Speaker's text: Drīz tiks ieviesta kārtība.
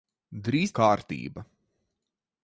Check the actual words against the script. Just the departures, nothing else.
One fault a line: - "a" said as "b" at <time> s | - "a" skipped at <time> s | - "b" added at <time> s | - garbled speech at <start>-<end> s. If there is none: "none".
- "tiks ieviesta" skipped at 0.7 s